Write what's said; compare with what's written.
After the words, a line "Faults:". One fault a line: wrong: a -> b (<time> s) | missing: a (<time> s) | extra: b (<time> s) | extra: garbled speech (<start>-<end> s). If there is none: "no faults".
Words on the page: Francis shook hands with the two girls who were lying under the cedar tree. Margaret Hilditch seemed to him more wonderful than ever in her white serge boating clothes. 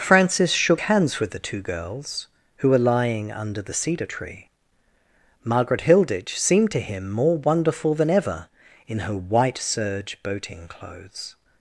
Francis shook hands with the two girls who were lying under the cedar tree. Margaret Hilditch seemed to him more wonderful than ever in her white serge boating clothes.
Faults:
no faults